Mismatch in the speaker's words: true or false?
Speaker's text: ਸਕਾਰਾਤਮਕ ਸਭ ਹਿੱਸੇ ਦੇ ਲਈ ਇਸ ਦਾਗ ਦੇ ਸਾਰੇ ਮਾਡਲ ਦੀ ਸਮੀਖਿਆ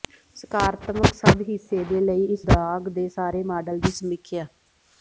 false